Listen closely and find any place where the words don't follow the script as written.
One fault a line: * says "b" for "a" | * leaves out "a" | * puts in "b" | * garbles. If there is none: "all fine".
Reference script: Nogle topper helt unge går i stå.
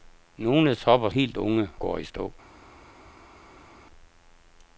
all fine